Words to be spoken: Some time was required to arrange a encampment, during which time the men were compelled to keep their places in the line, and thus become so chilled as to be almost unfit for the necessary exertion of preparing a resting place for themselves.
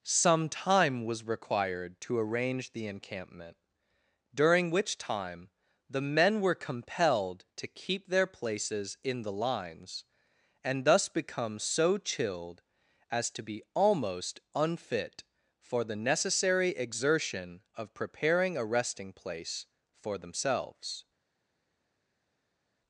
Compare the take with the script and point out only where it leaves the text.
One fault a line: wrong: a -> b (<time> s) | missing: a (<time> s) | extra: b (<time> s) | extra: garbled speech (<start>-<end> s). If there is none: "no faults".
wrong: a -> the (2.7 s)
wrong: line -> lines (9.3 s)